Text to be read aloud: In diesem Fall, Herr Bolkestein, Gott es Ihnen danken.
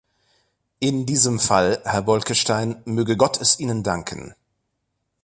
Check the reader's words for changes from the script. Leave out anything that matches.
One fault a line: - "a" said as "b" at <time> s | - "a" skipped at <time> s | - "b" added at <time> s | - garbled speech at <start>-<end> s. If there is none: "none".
- "möge" added at 2.9 s